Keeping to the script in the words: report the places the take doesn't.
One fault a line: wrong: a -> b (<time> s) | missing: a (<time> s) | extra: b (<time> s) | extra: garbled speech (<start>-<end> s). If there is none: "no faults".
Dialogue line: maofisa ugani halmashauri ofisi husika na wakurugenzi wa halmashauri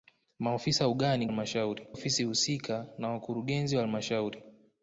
no faults